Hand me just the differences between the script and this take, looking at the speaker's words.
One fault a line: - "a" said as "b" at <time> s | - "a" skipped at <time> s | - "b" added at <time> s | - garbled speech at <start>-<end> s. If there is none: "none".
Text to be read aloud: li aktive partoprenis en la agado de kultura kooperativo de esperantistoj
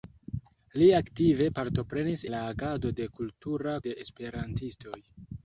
- "en" skipped at 2.2 s
- "kooperativo" skipped at 3.8 s